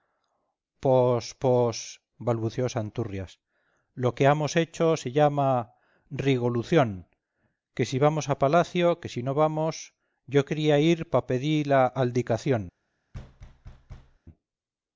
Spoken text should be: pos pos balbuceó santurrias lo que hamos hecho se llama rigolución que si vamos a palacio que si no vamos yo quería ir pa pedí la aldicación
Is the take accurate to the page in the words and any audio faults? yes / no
no